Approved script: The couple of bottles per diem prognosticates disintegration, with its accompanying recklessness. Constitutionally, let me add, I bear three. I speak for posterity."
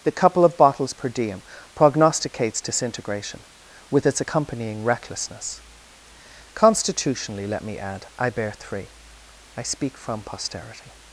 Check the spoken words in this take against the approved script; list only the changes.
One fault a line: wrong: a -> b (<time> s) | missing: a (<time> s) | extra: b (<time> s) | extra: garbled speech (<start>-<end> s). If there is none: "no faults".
wrong: for -> from (10.0 s)